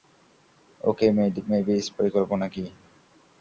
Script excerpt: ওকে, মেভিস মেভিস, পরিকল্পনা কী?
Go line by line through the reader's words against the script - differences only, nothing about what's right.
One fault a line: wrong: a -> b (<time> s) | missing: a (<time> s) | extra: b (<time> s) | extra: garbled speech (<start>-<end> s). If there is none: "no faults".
missing: মেভিস (1.8 s)